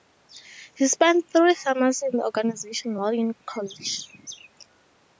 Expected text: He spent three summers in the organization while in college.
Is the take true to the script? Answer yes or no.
yes